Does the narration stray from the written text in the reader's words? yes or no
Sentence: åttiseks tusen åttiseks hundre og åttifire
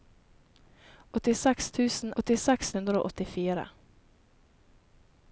no